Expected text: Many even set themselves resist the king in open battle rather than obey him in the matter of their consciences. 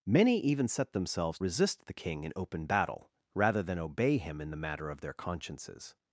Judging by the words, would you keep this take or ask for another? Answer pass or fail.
pass